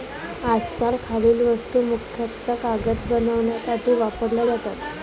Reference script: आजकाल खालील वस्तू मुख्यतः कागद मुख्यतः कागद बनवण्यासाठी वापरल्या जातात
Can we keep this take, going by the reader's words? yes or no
no